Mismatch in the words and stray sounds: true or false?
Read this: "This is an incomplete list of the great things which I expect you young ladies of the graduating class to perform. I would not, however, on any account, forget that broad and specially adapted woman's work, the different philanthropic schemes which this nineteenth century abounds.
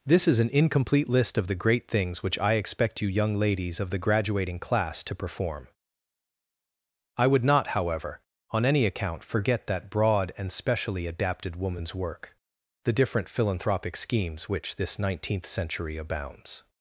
false